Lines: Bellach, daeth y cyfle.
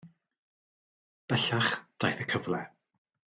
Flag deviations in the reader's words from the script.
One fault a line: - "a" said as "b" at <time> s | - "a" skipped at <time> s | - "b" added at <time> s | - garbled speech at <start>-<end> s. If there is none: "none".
none